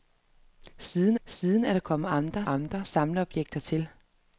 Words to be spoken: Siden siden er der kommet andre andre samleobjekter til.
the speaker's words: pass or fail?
pass